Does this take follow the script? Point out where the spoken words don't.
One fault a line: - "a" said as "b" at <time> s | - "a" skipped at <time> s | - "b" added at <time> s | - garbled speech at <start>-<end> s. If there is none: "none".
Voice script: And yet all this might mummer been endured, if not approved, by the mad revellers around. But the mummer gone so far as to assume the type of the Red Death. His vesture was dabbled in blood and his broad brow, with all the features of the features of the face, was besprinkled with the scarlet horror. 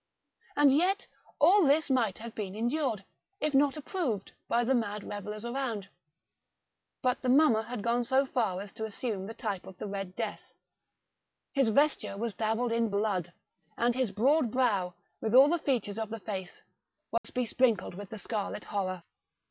- "mummer" said as "have" at 2.2 s
- "had" added at 7.6 s
- "features of the" skipped at 16.2 s